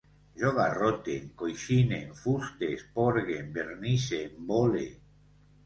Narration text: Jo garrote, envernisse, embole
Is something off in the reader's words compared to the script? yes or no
yes